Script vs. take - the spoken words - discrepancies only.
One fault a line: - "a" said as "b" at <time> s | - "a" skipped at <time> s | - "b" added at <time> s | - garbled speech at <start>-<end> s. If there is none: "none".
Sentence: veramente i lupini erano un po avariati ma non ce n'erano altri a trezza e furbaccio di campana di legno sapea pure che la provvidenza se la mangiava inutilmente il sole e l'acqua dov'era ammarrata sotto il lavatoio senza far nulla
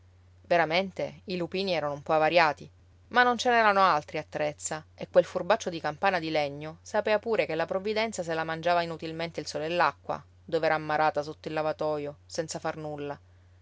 - "quel" added at 5.1 s